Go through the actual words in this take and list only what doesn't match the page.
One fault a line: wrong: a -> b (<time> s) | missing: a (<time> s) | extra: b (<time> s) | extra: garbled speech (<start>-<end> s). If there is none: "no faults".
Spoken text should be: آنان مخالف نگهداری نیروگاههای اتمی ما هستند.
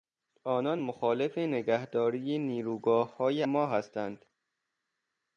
missing: اتمی (3.4 s)